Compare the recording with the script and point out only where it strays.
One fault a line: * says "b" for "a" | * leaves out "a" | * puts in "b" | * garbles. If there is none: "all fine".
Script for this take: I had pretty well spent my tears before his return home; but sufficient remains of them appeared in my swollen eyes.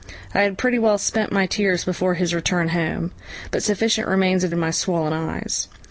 * leaves out "them appeared"